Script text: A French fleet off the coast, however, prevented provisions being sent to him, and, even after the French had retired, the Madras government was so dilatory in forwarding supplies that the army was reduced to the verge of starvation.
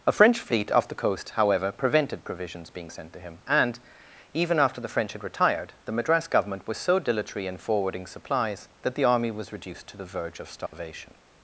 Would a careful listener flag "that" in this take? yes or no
no